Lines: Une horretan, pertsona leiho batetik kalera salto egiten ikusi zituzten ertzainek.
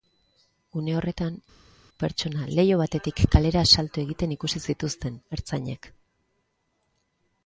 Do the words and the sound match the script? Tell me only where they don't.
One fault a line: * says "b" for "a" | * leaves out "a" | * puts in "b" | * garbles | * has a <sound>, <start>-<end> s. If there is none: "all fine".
all fine